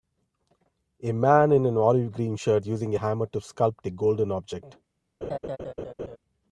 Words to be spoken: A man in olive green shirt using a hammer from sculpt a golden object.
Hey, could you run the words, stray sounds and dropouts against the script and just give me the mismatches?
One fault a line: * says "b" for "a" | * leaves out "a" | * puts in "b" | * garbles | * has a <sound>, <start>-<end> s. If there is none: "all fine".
* puts in "an"
* says "to" for "from"
* has a laugh, 5.2-6.2 s